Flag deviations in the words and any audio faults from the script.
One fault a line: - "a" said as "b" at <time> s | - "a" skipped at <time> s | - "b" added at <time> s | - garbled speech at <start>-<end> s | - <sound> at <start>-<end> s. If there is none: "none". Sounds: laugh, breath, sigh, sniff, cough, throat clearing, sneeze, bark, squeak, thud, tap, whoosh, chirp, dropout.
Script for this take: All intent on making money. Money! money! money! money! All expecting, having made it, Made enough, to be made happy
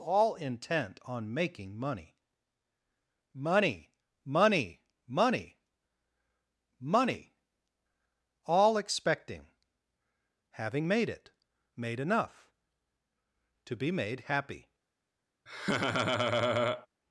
- laugh at 15.5-16.9 s